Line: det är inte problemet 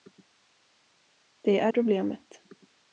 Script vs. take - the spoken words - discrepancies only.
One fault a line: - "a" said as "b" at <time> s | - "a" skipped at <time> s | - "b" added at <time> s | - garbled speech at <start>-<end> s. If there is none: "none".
- "inte" skipped at 1.7 s